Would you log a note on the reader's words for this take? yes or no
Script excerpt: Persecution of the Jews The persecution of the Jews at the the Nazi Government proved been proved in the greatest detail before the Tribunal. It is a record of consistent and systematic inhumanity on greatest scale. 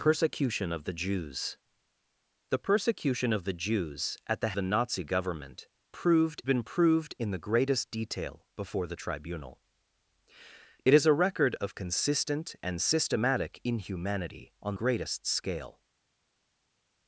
no